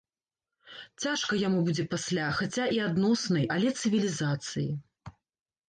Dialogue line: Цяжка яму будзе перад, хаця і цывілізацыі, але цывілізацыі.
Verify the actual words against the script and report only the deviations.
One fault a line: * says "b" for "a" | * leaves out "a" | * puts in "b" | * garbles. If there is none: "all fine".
* says "пасля" for "перад"
* says "адноснай" for "цывілізацыі"